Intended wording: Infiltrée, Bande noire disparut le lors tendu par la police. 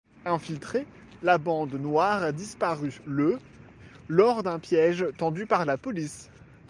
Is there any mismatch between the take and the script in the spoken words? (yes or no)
yes